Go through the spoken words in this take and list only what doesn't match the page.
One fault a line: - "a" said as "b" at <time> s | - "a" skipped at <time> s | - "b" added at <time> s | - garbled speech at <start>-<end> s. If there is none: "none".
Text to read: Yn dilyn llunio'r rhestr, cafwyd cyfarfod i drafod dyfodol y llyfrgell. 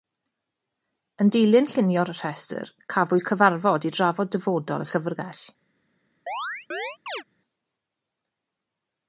none